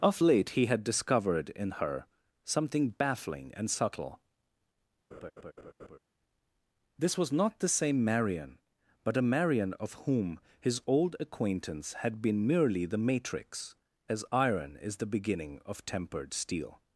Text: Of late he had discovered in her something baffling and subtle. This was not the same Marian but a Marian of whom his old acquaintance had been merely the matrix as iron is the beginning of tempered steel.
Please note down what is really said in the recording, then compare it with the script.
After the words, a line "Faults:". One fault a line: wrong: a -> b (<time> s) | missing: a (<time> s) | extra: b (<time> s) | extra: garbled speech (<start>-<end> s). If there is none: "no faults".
Of late he had discovered in her something baffling and subtle. This was not the same Marian but a Marian of whom his old acquaintance had been merely the matrix as iron is the beginning of tempered steel.
Faults:
no faults